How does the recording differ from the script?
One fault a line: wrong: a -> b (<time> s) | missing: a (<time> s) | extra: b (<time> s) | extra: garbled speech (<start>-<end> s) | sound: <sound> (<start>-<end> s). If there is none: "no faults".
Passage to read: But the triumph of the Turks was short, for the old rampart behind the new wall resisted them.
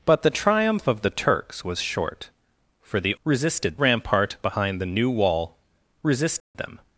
wrong: old -> resisted (3.2 s)
sound: dropout (6.4-6.5 s)